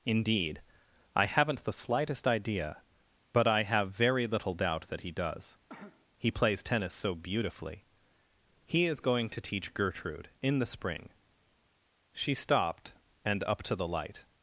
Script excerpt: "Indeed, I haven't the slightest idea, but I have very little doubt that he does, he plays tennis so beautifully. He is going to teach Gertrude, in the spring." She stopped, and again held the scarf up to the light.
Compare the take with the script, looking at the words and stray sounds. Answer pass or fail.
fail